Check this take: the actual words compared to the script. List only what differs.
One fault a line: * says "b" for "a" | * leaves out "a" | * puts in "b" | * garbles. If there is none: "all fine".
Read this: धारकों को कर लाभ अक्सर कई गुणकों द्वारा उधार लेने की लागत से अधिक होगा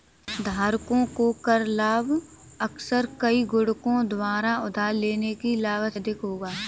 * leaves out "से"